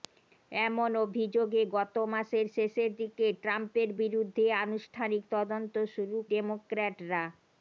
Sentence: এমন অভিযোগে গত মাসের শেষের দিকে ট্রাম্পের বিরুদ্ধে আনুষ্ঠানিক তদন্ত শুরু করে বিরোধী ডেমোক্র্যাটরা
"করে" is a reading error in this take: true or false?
true